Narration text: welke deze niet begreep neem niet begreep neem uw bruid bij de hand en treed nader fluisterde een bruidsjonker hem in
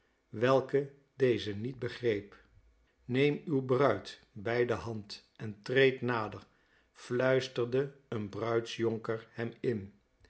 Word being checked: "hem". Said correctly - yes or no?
yes